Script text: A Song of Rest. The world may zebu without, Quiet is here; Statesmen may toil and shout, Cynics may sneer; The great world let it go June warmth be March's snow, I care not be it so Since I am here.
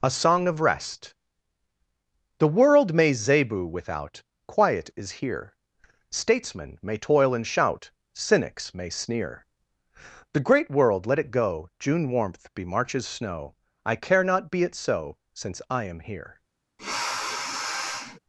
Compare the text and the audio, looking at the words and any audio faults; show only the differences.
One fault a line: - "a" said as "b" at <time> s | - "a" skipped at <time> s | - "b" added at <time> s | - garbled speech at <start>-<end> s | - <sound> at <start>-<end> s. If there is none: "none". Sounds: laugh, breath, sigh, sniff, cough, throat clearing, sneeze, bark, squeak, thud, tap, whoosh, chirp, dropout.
- sniff at 16.8-18.2 s